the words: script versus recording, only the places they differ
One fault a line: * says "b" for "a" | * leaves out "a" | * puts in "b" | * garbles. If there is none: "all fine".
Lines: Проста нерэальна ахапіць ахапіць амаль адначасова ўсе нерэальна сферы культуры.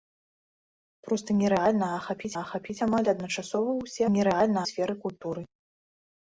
all fine